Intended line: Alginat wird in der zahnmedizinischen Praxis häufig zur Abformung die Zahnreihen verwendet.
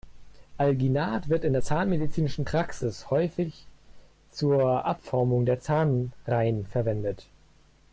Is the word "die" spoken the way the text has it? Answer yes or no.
no